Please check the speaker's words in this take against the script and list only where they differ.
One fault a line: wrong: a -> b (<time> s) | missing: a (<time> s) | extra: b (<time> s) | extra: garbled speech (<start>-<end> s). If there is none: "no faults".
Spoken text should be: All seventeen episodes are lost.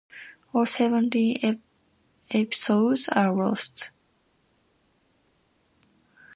no faults